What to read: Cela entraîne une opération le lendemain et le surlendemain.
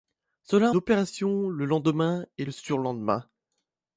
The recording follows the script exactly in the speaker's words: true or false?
false